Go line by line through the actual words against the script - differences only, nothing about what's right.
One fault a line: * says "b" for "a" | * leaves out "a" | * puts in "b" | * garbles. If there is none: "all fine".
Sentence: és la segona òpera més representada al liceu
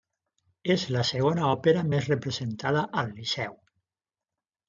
all fine